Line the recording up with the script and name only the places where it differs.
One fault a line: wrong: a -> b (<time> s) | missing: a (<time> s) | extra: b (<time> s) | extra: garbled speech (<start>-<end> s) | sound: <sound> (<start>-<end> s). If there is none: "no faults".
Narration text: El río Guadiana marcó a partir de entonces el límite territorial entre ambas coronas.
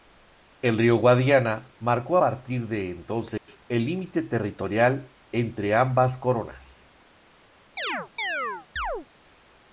missing: a (2.2 s)
sound: dropout (3.4-3.5 s)
sound: chirp (7.8-9.1 s)